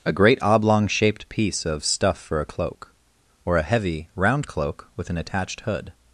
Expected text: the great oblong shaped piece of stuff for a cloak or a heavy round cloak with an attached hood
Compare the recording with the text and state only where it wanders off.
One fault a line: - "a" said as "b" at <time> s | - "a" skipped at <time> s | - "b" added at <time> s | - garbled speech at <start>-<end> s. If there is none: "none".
- "the" said as "a" at 0.0 s